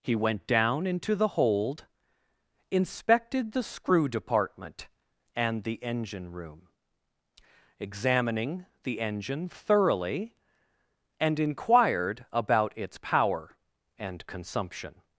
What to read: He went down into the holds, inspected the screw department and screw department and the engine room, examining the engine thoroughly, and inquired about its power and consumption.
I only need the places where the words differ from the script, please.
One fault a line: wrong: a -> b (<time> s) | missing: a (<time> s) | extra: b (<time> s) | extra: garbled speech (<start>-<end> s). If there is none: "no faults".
wrong: holds -> hold (1.3 s)
missing: screw department and (5.6 s)